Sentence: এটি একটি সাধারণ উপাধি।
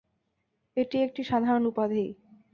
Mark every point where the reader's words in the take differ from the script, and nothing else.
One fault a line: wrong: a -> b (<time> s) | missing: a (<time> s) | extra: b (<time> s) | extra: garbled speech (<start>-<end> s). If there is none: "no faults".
no faults